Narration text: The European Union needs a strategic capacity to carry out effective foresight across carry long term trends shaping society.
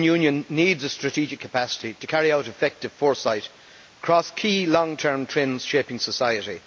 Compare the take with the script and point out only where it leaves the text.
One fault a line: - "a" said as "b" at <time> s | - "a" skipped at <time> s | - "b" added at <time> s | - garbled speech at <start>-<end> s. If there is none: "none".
- "carry" said as "key" at 4.3 s